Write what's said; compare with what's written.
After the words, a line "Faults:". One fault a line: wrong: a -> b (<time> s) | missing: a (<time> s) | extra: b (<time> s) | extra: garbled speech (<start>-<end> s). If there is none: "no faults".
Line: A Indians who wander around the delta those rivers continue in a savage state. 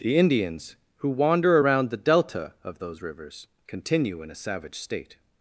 The Indians who wander around the delta of those rivers continue in a savage state.
Faults:
wrong: A -> The (0.0 s)
extra: of (2.6 s)